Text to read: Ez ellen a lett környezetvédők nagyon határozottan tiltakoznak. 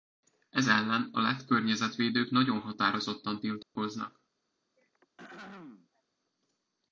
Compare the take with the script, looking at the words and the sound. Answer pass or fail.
fail